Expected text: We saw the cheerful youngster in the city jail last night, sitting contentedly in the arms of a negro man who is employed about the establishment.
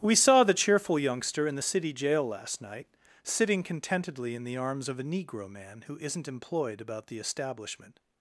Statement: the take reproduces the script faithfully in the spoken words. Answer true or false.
false